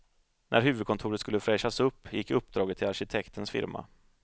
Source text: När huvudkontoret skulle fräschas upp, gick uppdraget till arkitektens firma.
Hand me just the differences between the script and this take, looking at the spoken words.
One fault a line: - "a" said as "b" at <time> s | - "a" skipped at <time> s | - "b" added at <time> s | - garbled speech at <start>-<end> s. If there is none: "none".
none